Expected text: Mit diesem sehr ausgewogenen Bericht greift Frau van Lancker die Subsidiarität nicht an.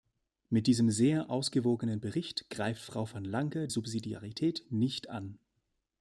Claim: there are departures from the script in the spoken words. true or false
true